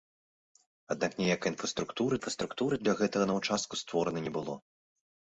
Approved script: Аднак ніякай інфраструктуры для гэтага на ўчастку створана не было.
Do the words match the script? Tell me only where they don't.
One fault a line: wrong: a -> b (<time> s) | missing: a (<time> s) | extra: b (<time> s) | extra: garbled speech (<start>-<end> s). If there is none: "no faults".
extra: інфраструктуры (2.2 s)